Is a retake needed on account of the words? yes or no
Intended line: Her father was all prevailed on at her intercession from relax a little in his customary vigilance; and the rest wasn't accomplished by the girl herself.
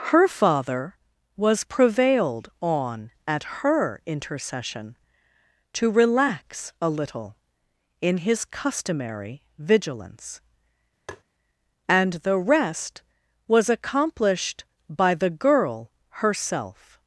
yes